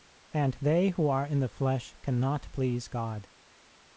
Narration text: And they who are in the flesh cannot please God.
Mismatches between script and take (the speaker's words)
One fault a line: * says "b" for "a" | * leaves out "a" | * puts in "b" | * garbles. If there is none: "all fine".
all fine